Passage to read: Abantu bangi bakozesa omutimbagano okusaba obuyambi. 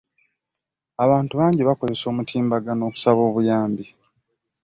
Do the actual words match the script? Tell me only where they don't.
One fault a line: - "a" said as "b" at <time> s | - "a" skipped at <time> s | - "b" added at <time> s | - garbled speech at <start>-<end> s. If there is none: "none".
none